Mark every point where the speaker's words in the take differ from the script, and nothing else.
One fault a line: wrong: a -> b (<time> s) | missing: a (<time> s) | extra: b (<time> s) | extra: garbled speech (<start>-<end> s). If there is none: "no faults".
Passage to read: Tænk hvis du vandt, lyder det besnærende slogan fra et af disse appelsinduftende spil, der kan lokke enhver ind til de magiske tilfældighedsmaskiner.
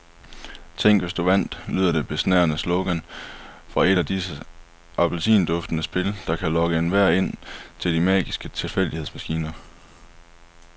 no faults